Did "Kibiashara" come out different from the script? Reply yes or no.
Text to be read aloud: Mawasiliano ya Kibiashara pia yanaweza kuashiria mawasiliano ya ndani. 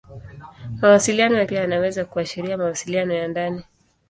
yes